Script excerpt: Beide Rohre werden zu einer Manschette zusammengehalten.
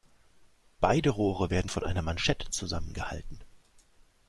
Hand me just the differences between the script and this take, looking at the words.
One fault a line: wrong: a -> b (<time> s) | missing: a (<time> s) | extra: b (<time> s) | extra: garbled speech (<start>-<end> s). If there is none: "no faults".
wrong: zu -> von (1.7 s)